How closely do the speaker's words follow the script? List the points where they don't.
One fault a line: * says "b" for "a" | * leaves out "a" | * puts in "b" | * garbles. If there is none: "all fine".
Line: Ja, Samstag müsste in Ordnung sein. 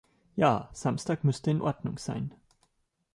all fine